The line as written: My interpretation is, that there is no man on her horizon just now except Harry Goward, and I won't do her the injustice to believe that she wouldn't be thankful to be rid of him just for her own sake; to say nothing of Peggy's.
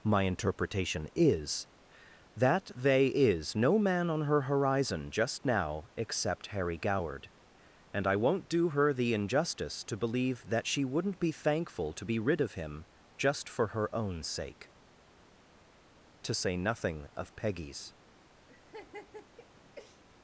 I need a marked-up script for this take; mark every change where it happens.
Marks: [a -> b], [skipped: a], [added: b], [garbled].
My interpretation is, that [there -> they] is no man on her horizon just now except Harry Goward, and I won't do her the injustice to believe that she wouldn't be thankful to be rid of him just for her own sake; to say nothing of Peggy's.